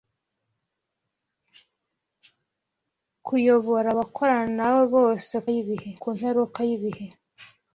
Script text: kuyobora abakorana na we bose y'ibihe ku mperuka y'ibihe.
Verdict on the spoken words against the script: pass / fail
pass